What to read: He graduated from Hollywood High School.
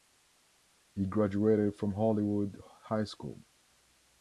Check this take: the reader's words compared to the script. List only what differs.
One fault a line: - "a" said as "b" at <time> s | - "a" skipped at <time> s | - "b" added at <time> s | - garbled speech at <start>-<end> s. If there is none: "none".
none